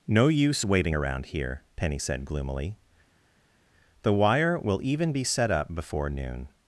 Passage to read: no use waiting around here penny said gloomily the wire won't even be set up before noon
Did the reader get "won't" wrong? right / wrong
wrong